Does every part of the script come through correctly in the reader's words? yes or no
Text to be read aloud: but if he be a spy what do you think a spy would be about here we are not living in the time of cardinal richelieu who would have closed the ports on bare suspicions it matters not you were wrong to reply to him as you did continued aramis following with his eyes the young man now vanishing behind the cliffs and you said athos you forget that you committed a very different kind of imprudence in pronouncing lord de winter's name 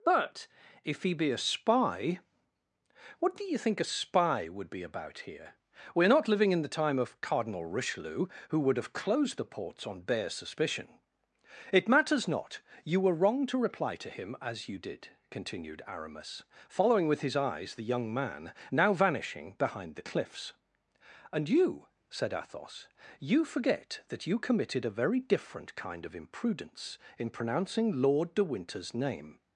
no